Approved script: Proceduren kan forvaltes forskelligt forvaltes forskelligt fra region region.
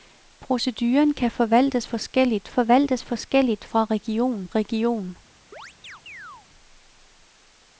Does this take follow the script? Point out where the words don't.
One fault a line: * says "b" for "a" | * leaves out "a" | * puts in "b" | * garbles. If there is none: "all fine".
all fine